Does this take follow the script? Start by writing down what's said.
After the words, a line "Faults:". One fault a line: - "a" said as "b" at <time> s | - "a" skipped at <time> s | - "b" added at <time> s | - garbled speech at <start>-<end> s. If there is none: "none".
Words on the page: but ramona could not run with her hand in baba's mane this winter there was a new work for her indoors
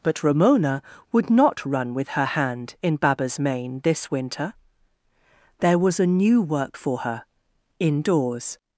but ramona would not run with her hand in baba's mane this winter there was a new work for her indoors
Faults:
- "could" said as "would" at 1.1 s